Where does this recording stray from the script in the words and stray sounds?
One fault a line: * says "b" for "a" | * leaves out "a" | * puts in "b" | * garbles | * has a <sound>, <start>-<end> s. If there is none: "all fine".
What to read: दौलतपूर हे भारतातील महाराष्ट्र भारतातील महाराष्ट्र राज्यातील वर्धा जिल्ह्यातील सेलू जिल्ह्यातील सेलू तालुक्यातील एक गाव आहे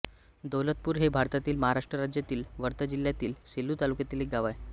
* leaves out "भारतातील महाराष्ट्र"
* leaves out "जिल्ह्यातील सेलू"